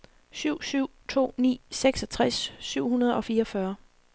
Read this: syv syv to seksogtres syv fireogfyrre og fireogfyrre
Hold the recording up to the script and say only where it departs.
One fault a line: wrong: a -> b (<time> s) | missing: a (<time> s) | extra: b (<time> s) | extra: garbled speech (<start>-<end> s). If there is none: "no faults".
extra: ni (1.4 s)
wrong: fireogfyrre -> hundrede (2.9 s)